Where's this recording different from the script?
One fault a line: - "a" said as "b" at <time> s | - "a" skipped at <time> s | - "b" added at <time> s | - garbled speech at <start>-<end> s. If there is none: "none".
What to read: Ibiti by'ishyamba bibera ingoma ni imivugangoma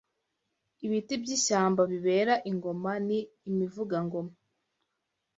none